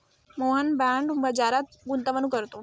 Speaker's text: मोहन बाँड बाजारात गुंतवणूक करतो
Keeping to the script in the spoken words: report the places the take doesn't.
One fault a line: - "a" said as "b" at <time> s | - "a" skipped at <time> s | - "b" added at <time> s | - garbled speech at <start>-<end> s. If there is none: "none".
none